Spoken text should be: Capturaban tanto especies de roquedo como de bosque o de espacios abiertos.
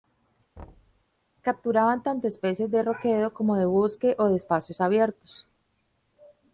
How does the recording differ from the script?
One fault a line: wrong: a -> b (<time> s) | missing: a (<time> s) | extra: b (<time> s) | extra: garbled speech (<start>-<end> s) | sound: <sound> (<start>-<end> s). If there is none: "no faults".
sound: thud (0.6-1.0 s)